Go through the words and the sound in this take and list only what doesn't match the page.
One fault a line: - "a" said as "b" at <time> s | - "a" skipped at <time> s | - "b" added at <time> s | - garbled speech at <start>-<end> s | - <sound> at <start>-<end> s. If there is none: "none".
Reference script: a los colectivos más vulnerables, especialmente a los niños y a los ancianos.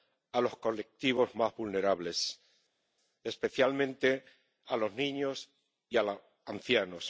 none